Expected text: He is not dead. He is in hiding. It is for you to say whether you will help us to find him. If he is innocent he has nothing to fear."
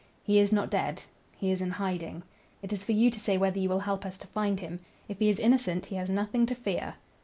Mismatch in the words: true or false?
false